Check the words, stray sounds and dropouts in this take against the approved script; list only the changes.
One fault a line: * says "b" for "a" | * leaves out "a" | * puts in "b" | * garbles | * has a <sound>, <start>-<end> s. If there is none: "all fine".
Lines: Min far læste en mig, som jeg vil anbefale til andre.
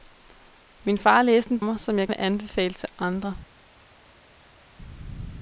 all fine